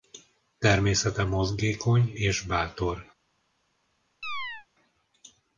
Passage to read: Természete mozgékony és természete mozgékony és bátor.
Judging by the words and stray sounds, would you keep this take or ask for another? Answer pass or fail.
fail